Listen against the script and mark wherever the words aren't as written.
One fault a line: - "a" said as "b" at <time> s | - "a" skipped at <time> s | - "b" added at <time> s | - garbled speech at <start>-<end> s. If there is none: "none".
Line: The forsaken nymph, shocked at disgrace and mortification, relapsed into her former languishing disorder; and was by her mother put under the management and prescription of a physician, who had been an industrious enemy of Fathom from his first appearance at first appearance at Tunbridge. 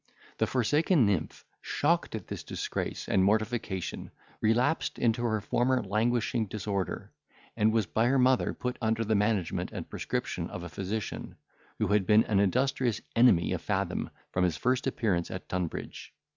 - "this" added at 2.2 s
- "first appearance at" skipped at 15.5 s